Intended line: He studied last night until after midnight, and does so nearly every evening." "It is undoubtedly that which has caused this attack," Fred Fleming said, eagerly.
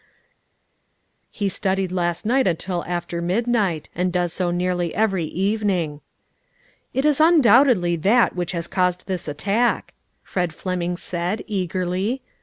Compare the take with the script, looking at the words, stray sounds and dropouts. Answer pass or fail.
pass